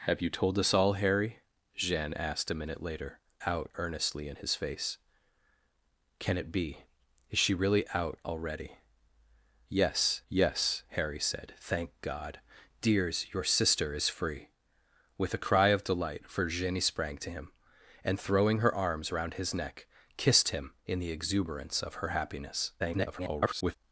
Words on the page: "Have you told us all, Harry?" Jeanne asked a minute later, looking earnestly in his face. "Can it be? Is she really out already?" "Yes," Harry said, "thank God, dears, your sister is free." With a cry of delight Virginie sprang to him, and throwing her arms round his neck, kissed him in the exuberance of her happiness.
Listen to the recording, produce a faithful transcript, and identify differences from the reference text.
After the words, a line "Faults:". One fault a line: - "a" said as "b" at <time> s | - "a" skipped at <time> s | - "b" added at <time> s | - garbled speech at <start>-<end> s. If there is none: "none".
"Have you told us all, Harry?" Jeanne asked a minute later, out earnestly in his face. "Can it be? Is she really out already?" "Yes yes," Harry said, "thank God, dears, your sister is free." With a cry of delight Virginie sprang to him, and throwing her arms round his neck, kissed him in the exuberance of her happiness. [garbled]
Faults:
- "looking" said as "out" at 3.4 s
- "yes" added at 10.3 s
- garbled speech at 22.8-23.8 s